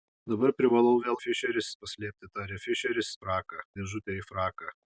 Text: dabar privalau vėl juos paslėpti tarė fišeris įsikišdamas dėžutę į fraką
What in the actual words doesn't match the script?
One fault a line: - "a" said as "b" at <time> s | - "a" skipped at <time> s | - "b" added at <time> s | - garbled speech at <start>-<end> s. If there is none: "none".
- "juos" said as "fišeris" at 1.2 s
- "įsikišdamas" said as "fraką" at 3.2 s